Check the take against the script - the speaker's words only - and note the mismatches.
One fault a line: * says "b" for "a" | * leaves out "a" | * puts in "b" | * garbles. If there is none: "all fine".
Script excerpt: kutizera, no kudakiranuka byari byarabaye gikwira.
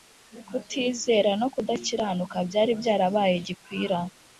all fine